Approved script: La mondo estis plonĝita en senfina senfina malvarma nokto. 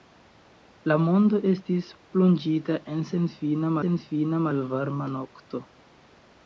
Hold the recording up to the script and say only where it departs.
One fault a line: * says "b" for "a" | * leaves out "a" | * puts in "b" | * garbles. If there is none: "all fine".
all fine